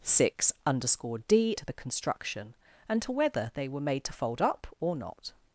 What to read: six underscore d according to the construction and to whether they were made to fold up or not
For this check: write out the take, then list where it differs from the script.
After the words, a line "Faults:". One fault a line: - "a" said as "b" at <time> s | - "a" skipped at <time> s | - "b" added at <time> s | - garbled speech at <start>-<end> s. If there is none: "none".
six underscore d to the construction and to whether they were made to fold up or not
Faults:
- "according" skipped at 1.6 s